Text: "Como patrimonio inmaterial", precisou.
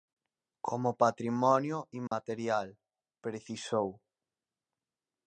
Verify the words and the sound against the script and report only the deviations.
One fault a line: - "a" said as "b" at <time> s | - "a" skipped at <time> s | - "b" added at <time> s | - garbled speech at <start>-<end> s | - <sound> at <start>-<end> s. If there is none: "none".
- dropout at 2.1-2.1 s